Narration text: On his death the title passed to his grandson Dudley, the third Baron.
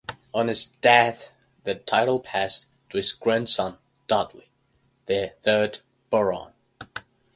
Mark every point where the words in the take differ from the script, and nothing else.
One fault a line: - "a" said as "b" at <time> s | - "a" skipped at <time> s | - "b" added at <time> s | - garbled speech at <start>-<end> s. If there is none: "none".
none